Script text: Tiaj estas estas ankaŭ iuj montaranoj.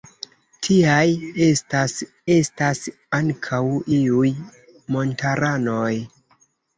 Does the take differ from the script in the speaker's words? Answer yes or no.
no